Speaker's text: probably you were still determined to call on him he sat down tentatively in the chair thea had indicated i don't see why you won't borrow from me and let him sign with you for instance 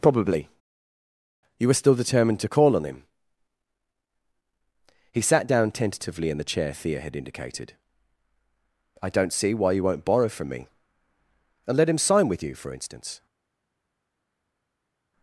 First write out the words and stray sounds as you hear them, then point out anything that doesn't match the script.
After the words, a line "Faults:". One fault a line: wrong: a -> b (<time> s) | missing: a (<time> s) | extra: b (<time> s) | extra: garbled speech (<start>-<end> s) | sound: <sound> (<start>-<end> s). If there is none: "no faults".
probably you were still determined to call on him he sat down tentatively in the chair thea had indicated i don't see why you won't borrow from me and let him sign with you for instance
Faults:
no faults